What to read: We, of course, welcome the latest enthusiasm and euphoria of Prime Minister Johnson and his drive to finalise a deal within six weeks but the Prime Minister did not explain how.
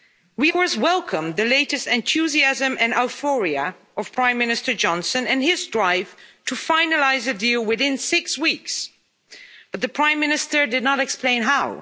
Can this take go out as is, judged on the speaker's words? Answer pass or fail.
fail